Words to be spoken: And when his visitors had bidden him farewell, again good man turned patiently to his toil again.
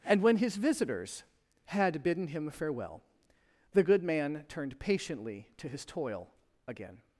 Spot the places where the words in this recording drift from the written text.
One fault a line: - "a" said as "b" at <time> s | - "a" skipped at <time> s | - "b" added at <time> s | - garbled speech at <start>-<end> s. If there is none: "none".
- "again" said as "the" at 3.7 s